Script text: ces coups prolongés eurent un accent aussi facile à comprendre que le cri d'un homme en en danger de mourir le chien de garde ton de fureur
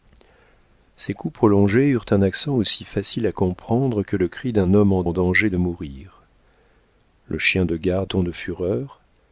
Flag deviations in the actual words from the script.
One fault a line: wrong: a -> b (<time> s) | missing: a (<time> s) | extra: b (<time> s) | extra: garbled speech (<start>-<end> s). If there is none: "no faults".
no faults